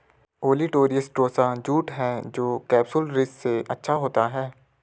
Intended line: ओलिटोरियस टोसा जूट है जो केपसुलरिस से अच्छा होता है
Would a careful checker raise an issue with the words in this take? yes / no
no